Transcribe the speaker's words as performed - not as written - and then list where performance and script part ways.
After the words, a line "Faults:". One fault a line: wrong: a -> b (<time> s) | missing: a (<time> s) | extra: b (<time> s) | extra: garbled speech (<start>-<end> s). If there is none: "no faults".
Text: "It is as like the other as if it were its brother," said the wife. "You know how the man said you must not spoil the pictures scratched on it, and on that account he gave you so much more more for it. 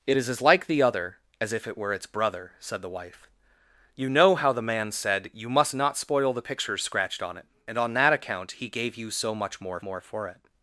"It is as like the other as if it were its brother," said the wife. "You know how the man said you must not spoil the pictures scratched on it, and on that account he gave you so much more more for it.
Faults:
no faults